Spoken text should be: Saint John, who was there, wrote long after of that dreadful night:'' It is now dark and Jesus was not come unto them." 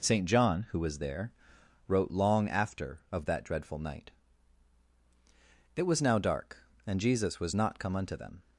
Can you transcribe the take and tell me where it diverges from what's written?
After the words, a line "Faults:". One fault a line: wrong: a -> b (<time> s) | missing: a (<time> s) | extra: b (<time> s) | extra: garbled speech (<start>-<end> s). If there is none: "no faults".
Saint John, who was there, wrote long after of that dreadful night:'' It was now dark and Jesus was not come unto them."
Faults:
wrong: is -> was (5.8 s)